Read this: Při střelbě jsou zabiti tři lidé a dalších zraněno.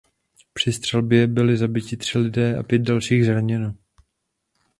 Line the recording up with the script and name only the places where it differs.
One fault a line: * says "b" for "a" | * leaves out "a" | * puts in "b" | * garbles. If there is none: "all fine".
* says "byli" for "jsou"
* puts in "pět"